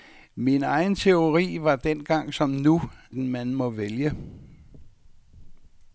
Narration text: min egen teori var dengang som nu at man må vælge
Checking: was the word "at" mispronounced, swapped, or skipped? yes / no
yes